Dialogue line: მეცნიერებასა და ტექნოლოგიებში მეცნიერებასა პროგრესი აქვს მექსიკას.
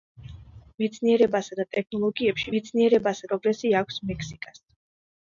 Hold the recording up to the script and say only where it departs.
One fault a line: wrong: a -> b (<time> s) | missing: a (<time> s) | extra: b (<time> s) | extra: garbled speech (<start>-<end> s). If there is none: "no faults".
no faults